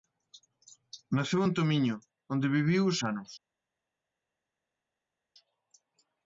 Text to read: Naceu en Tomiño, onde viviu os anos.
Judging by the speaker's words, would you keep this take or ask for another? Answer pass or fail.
pass